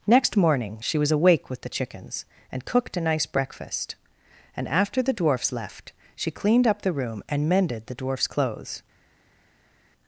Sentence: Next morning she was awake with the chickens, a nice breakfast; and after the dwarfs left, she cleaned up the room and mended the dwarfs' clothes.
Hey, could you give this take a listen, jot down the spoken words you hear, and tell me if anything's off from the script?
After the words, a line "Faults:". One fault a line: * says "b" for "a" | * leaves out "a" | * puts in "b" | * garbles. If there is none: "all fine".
Next morning she was awake with the chickens, and cooked a nice breakfast; and after the dwarfs left, she cleaned up the room and mended the dwarfs' clothes.
Faults:
* puts in "and cooked"